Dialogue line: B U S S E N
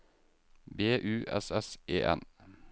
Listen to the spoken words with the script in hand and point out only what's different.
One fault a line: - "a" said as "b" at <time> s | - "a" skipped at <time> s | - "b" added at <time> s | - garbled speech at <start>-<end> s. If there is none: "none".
none